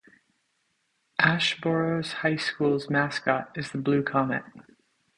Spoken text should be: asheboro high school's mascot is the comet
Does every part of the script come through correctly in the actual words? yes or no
no